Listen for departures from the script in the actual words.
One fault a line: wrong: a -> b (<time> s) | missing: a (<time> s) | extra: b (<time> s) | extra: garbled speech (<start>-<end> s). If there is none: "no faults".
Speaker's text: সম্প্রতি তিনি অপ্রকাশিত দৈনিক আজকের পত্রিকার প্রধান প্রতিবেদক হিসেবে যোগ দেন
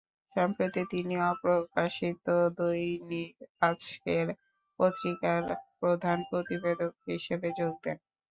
no faults